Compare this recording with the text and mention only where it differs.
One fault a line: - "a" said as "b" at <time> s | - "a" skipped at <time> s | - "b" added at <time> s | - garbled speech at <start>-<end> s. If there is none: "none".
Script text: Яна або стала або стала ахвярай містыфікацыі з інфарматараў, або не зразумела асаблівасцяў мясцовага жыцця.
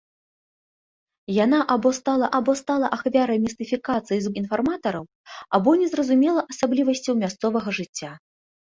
none